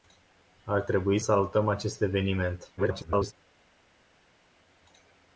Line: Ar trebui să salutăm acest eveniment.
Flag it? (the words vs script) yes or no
yes